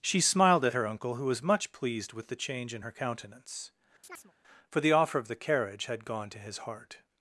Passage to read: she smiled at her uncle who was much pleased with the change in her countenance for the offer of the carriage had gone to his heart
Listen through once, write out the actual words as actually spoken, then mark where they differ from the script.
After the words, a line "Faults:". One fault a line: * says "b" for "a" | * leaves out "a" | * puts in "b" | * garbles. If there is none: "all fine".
she smiled at her uncle who was much pleased with the change in her countenance for the offer of the carriage had gone to his heart
Faults:
all fine